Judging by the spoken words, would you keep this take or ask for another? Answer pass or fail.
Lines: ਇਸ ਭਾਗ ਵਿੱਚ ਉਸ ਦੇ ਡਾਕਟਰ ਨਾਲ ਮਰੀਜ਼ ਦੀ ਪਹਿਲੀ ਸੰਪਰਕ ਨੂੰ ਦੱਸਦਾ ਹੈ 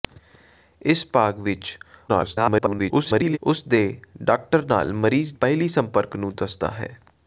fail